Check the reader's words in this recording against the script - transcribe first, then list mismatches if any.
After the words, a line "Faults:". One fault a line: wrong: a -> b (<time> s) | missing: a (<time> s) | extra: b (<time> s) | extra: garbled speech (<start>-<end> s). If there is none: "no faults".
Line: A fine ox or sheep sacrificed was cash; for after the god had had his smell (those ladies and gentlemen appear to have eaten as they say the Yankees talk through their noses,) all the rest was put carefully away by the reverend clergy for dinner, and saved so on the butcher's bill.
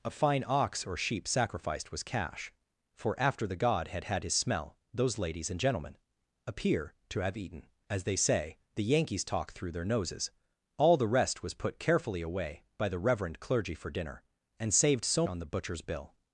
A fine ox or sheep sacrificed was cash; for after the god had had his smell (those ladies and gentlemen appear to have eaten as they say the Yankees talk through their noses,) all the rest was put carefully away by the reverend clergy for dinner, and saved so on the butcher's bill.
Faults:
no faults